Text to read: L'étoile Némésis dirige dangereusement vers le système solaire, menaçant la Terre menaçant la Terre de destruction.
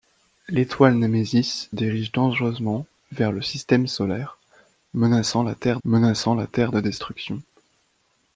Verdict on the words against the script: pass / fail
pass